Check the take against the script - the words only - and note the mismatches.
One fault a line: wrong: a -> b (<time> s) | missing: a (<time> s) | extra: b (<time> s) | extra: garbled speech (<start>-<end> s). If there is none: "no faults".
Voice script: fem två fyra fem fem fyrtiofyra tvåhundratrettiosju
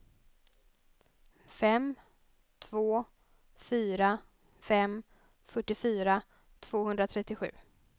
missing: fem (5.0 s)